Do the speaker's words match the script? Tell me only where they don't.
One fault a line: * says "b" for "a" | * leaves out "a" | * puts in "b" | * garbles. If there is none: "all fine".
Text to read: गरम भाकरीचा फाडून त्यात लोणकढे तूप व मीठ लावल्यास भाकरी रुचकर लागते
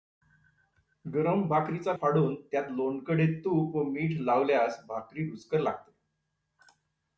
all fine